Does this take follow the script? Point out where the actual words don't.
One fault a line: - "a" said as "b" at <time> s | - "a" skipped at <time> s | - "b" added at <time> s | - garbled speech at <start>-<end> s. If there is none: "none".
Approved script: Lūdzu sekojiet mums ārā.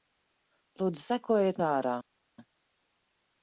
- "mums" skipped at 1.6 s